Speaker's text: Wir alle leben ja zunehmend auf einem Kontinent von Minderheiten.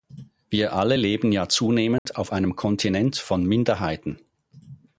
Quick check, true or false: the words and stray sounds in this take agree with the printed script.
false